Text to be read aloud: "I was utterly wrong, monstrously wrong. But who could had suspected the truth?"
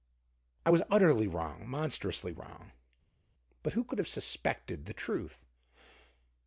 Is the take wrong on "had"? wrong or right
wrong